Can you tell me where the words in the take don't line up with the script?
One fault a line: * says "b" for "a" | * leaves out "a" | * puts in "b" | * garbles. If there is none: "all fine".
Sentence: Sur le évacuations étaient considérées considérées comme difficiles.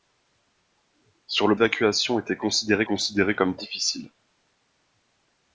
all fine